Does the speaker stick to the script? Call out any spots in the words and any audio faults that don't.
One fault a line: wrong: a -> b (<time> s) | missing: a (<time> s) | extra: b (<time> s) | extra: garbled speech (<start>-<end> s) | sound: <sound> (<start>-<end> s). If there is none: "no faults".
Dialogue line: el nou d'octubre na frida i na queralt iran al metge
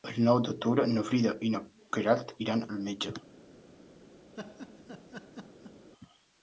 sound: laugh (4.3-5.9 s)